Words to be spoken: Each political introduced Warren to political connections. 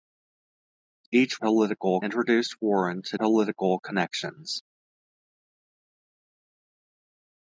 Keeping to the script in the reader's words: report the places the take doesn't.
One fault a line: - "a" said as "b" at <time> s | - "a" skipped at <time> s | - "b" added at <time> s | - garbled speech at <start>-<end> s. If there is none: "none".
none